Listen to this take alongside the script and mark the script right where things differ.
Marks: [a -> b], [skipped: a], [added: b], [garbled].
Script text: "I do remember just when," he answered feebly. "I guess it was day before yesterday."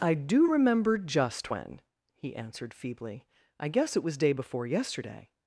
"I do remember just when," he answered feebly. "I guess it was day before yesterday."